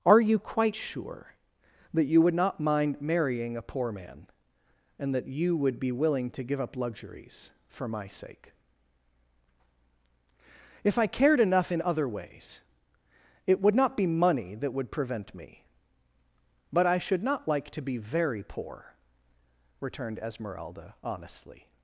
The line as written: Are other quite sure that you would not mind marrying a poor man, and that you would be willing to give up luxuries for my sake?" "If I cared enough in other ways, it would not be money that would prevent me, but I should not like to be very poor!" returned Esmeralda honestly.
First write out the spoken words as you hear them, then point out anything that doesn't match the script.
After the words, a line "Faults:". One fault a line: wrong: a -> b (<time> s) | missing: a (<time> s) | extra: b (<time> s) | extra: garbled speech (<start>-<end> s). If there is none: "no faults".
Are you quite sure that you would not mind marrying a poor man, and that you would be willing to give up luxuries for my sake?" "If I cared enough in other ways, it would not be money that would prevent me, but I should not like to be very poor!" returned Esmeralda honestly.
Faults:
wrong: other -> you (0.2 s)